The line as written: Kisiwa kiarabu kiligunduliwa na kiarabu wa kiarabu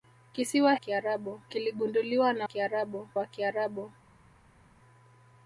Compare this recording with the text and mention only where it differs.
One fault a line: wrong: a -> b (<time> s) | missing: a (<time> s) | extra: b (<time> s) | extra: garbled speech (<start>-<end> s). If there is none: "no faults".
no faults